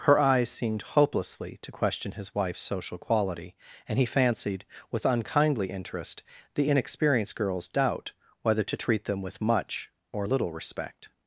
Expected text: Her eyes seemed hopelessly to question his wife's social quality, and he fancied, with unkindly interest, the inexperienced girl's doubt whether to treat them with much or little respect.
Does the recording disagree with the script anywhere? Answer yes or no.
no